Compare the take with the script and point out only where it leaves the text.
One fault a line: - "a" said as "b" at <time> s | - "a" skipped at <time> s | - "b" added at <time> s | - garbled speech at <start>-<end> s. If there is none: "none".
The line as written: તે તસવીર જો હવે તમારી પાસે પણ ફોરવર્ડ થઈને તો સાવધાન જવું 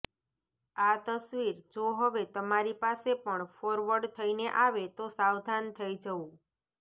- "તે" said as "આ" at 0.8 s
- "આવે" added at 4.6 s
- "થઈ" added at 5.8 s